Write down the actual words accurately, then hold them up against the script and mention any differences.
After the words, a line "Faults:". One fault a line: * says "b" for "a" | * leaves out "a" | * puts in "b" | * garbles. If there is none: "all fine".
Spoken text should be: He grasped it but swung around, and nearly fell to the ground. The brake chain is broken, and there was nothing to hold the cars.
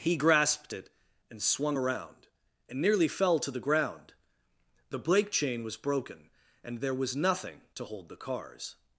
He grasped it and swung around, and nearly fell to the ground. The brake chain was broken, and there was nothing to hold the cars.
Faults:
* says "and" for "but"
* says "was" for "is"